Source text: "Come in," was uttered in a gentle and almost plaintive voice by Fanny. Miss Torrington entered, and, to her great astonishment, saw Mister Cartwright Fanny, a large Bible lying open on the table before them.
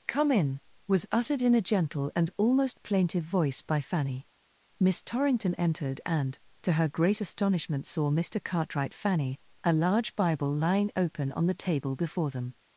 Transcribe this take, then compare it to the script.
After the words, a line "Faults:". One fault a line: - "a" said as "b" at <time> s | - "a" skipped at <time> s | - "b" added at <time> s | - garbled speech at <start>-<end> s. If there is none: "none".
"Come in," was uttered in a gentle and almost plaintive voice by Fanny. Miss Torrington entered, and, to her great astonishment, saw Mister Cartwright Fanny, a large Bible lying open on the table before them.
Faults:
none